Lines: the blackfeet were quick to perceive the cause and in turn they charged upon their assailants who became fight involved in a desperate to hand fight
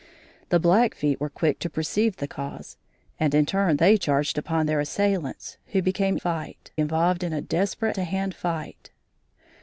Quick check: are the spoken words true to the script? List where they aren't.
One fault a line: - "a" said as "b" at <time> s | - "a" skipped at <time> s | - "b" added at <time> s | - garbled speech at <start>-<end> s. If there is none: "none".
none